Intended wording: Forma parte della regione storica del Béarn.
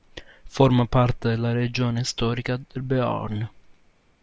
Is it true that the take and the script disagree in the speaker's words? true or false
false